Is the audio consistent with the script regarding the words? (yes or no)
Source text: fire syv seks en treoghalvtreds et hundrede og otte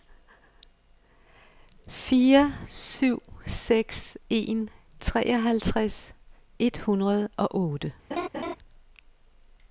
yes